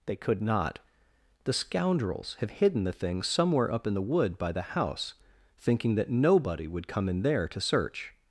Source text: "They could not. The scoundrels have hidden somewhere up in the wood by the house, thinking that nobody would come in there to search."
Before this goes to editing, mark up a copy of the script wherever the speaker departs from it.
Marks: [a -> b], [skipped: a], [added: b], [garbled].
"They could not. The scoundrels have hidden [added: the things] somewhere up in the wood by the house, thinking that nobody would come in there to search."